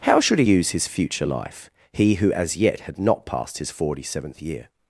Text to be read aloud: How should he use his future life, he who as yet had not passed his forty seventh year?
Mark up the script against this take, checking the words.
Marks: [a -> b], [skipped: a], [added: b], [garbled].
How should he use his future life, he who as yet had not passed his forty seventh year?